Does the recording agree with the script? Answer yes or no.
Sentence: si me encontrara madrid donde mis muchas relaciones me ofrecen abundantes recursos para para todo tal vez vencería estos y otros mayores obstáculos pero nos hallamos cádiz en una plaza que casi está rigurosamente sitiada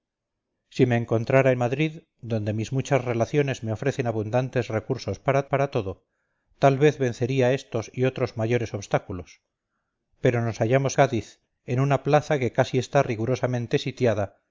yes